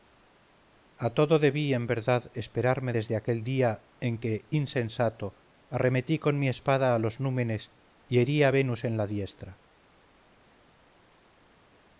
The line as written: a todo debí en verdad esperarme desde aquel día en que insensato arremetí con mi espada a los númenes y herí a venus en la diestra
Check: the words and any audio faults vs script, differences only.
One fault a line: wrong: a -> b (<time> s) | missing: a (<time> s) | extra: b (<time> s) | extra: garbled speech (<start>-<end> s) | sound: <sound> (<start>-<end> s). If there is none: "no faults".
no faults